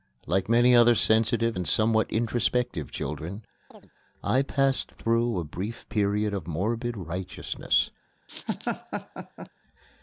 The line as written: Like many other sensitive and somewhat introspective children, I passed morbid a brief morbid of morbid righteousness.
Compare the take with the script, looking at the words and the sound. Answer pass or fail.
fail